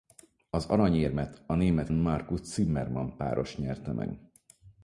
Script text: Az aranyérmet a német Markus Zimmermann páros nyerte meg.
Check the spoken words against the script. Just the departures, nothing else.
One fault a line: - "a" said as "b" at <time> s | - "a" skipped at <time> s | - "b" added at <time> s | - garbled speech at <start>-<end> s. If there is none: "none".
none